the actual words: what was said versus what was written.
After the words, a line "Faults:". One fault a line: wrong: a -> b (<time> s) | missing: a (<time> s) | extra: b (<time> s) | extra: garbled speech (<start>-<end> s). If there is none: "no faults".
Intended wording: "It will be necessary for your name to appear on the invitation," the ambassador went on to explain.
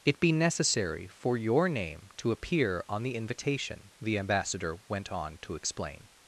"It be necessary for your name to appear on the invitation," the ambassador went on to explain.
Faults:
missing: will (0.2 s)